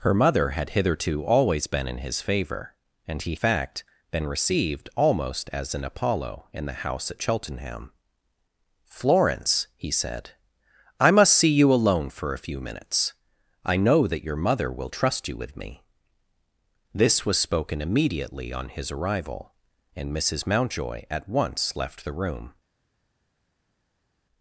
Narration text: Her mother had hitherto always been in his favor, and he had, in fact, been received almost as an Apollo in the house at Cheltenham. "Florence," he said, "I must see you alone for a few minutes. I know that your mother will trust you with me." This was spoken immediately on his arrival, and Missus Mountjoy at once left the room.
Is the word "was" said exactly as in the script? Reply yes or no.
yes